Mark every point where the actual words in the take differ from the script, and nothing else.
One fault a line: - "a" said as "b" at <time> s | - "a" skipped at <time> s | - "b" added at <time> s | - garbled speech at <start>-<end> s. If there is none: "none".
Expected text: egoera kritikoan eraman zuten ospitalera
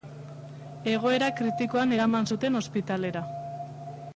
none